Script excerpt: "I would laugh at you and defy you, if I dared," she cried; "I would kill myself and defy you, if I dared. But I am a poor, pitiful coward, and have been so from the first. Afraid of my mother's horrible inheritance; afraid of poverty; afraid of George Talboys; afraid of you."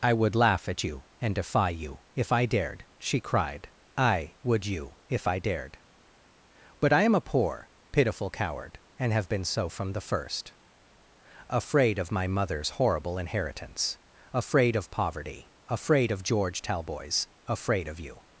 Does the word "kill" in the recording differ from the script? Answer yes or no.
yes